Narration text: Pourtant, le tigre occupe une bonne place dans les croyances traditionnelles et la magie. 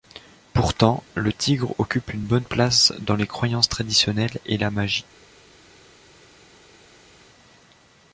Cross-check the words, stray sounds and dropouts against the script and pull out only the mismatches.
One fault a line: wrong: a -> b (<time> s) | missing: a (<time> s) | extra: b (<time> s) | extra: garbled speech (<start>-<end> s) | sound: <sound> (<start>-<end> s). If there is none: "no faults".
no faults